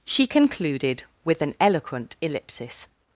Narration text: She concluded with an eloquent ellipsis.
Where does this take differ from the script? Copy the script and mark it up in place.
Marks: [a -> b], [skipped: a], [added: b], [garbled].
She concluded with an eloquent ellipsis.